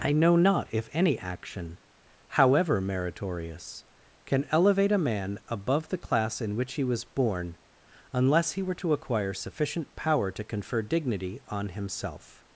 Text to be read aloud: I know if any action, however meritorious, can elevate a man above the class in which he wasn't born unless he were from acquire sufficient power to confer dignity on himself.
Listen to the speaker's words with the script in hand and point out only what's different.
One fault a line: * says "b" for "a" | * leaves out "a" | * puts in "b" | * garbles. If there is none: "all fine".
* puts in "not"
* says "was" for "wasn't"
* says "to" for "from"